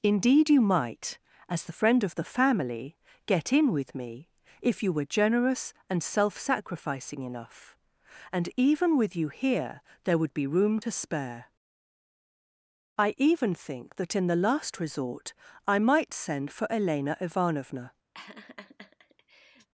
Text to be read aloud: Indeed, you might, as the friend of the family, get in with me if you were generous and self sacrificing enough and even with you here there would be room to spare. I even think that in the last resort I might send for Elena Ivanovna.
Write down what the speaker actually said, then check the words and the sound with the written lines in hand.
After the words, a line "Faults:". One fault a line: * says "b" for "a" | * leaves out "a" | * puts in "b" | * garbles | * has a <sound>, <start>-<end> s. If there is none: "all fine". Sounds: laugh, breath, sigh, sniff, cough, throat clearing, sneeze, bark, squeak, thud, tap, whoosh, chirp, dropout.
Indeed, you might, as the friend of the family, get in with me if you were generous and self sacrificing enough and even with you here there would be room to spare. I even think that in the last resort I might send for Elena Ivanovna.
Faults:
* has a laugh, 18.1-19.7 s